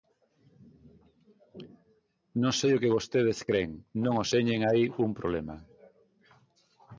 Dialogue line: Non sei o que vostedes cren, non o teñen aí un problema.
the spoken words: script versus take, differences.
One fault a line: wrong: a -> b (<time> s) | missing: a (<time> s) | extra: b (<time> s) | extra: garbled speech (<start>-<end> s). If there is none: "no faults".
no faults